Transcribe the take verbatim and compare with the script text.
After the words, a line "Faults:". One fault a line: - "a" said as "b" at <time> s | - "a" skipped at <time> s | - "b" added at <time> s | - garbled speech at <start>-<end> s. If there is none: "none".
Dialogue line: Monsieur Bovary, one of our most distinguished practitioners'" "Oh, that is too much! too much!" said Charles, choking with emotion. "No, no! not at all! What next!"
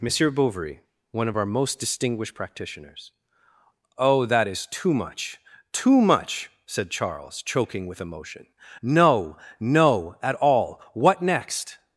Monsieur Bovary, one of our most distinguished practitioners'" "Oh, that is too much! too much!" said Charles, choking with emotion. "No, no! at all! What next!"
Faults:
- "not" skipped at 10.2 s